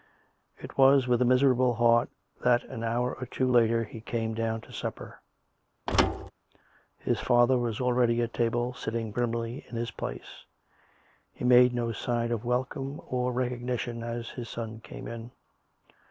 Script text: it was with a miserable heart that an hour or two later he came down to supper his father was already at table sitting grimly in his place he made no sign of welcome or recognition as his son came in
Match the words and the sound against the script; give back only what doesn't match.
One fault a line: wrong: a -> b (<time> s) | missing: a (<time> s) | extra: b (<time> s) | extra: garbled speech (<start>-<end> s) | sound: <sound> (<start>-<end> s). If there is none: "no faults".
sound: thud (5.9-6.3 s)